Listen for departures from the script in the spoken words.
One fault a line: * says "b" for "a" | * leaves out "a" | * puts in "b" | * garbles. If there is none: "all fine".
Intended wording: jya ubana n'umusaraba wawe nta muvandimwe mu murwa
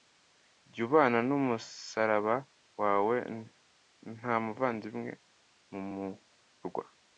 all fine